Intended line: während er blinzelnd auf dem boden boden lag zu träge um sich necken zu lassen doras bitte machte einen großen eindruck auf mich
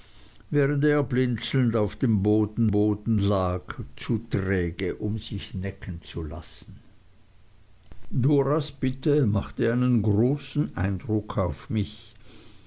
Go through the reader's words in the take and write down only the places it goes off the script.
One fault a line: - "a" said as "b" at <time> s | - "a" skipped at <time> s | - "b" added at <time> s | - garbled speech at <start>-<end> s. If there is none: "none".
none